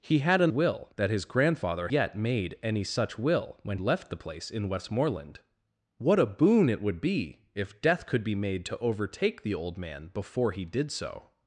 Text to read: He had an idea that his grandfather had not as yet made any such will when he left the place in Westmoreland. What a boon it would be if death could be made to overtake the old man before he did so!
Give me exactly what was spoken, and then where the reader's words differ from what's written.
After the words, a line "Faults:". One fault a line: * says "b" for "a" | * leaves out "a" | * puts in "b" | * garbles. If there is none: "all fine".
He had an will that his grandfather yet made any such will when left the place in Westmoreland. What a boon it would be if death could be made to overtake the old man before he did so!
Faults:
* says "will" for "idea"
* leaves out "had not as"
* leaves out "he"